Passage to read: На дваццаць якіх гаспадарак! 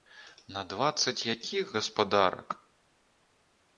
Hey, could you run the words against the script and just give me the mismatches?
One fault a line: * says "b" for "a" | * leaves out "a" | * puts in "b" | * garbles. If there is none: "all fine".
all fine